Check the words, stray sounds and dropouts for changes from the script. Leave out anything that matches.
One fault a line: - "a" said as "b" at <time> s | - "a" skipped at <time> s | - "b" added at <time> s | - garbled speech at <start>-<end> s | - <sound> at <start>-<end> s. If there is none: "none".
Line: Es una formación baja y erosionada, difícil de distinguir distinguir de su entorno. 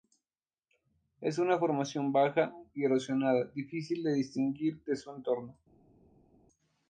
- "distinguir" skipped at 4.8 s